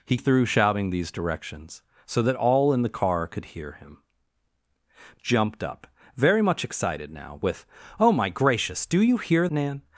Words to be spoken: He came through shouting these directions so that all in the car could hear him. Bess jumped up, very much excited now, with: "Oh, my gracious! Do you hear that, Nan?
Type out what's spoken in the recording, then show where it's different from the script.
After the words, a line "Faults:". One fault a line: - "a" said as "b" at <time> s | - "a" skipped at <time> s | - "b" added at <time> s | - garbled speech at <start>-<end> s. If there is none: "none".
He through shouting these directions so that all in the car could hear him. Jumped up, very much excited now, with: "Oh, my gracious! Do you hear Nan?
Faults:
- "came" skipped at 0.2 s
- "Bess" skipped at 4.0 s
- "that" skipped at 9.5 s